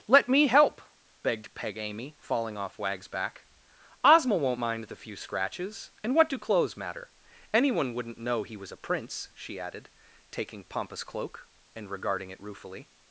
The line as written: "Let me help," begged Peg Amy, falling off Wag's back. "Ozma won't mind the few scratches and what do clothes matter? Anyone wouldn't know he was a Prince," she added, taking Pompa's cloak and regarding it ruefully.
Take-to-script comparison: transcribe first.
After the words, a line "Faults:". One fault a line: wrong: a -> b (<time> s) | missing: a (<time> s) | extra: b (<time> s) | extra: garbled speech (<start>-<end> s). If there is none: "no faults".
"Let me help," begged Peg Amy, falling off Wag's back. "Ozma won't mind the few scratches and what do clothes matter? Anyone wouldn't know he was a Prince," she added, taking Pompa's cloak and regarding it ruefully.
Faults:
no faults